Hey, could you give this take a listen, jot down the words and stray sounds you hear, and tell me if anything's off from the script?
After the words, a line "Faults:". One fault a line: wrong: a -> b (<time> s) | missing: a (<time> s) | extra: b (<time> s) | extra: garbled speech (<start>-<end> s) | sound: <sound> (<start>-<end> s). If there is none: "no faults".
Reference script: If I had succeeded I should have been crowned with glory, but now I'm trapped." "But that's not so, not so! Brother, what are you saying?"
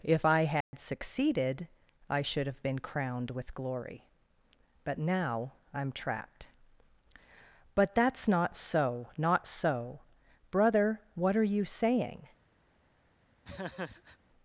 If I had succeeded I should have been crowned with glory, but now I'm trapped." "But that's not so, not so! Brother, what are you saying?"
Faults:
sound: dropout (0.6-0.7 s)
sound: laugh (13.4-14.2 s)